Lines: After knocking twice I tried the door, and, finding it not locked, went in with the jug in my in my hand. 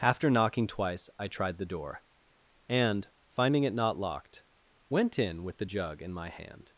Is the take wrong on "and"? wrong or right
right